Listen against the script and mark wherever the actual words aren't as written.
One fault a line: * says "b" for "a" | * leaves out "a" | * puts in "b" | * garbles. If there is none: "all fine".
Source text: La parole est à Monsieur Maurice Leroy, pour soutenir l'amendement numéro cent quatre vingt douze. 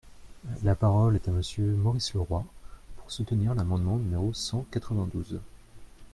all fine